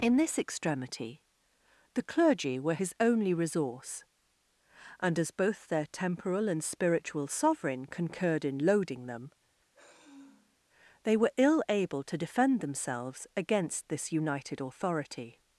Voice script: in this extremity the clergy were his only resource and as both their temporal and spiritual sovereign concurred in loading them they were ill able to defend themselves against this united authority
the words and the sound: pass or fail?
fail